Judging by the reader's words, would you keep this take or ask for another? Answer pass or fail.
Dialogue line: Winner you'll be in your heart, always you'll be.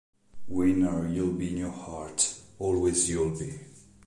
pass